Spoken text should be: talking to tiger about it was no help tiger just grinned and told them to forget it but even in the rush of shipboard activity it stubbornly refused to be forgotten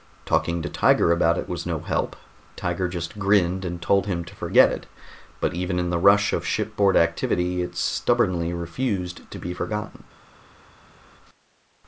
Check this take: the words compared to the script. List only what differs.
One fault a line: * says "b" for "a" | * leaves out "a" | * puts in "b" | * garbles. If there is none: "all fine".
* says "him" for "them"